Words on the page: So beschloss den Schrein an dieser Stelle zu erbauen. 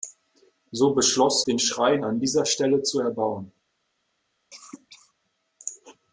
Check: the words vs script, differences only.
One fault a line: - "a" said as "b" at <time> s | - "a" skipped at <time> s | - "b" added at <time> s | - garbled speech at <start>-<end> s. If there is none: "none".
none